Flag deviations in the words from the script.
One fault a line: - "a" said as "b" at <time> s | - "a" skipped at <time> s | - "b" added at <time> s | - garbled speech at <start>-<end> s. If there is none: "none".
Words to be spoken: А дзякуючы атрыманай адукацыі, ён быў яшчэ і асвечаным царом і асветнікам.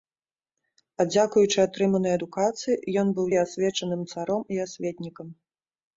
- "яшчэ" skipped at 3.3 s